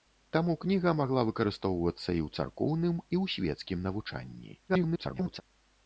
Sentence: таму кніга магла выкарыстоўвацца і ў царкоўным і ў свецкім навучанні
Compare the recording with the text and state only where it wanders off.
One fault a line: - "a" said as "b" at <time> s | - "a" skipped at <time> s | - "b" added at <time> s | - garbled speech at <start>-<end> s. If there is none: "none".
- garbled speech at 4.7-5.4 s